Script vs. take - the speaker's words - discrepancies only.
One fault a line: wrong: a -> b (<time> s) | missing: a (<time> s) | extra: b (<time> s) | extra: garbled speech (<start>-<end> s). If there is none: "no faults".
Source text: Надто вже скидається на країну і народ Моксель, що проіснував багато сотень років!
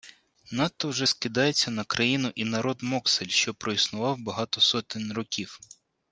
no faults